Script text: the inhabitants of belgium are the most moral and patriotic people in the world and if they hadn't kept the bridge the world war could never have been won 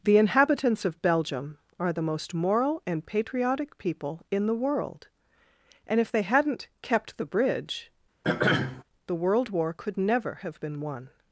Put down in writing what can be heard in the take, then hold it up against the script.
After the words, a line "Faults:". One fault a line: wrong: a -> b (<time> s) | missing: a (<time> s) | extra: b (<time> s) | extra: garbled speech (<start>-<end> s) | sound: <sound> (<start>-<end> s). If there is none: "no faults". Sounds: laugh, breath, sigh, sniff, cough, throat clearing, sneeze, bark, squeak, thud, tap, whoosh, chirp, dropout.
the inhabitants of belgium are the most moral and patriotic people in the world and if they hadn't kept the bridge the world war could never have been won
Faults:
sound: throat clearing (8.2-8.8 s)